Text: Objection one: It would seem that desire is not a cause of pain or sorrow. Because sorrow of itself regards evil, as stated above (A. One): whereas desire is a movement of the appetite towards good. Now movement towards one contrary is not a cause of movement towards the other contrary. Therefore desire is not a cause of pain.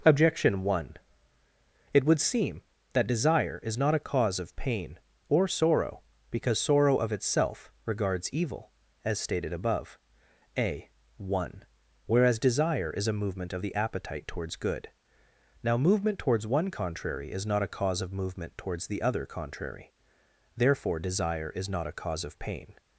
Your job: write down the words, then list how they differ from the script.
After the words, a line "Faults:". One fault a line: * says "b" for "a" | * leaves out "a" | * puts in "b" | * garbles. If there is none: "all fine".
Objection one: It would seem that desire is not a cause of pain or sorrow. Because sorrow of itself regards evil, as stated above (A. One): whereas desire is a movement of the appetite towards good. Now movement towards one contrary is not a cause of movement towards the other contrary. Therefore desire is not a cause of pain.
Faults:
all fine